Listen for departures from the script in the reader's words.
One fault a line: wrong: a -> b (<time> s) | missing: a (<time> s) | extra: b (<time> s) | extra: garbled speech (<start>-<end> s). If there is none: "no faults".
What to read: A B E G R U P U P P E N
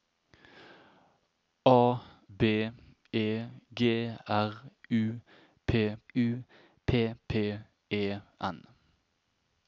no faults